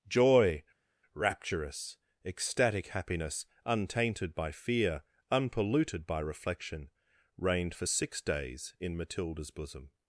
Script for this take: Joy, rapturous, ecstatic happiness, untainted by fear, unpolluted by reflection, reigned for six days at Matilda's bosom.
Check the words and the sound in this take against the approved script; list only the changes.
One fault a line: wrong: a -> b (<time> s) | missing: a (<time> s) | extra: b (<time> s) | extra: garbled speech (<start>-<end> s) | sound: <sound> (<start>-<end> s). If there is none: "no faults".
wrong: at -> in (8.8 s)